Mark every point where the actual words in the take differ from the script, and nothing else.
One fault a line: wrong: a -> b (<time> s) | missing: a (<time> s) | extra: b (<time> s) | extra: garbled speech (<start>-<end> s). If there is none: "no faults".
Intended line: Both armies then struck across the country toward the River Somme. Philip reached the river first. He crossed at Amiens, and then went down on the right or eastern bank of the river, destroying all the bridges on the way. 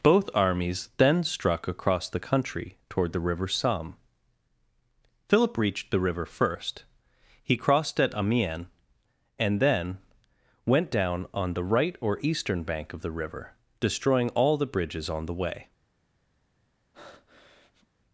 no faults